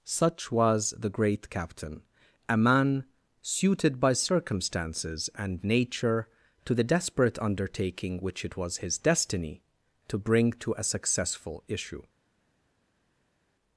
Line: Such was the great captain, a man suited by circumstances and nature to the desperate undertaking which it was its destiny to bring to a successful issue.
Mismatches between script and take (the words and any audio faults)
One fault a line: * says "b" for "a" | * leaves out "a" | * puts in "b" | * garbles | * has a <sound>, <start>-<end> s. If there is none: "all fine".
* says "his" for "its"